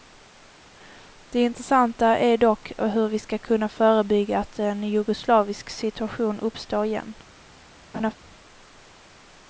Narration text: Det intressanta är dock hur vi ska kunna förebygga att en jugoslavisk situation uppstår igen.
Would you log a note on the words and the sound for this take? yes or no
yes